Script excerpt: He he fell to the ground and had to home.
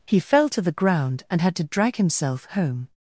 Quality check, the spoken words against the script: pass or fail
fail